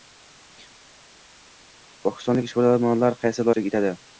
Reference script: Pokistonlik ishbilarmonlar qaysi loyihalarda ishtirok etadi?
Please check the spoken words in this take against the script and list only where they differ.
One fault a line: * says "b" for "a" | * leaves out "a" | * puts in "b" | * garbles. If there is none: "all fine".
* leaves out "loyihalarda"